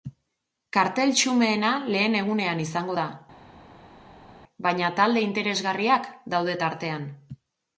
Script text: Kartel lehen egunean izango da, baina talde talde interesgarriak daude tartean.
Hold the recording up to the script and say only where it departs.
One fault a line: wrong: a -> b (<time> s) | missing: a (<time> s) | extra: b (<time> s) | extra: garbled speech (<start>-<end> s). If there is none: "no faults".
extra: xumeena (1.2 s)
missing: talde (5.2 s)